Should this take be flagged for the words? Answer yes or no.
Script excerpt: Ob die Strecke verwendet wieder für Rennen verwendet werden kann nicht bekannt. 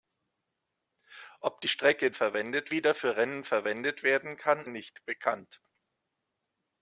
no